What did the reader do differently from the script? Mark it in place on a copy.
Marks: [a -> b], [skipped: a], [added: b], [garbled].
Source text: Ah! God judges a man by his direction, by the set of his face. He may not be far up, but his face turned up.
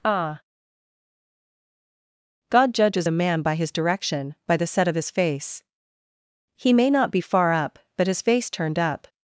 Ah! God judges a man by his direction, by the set of his face. He may not be far up, but his face turned up.